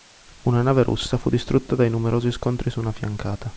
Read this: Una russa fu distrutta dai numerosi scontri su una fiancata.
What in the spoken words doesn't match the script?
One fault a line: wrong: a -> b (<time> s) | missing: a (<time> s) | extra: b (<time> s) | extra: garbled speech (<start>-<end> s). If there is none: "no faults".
extra: nave (0.6 s)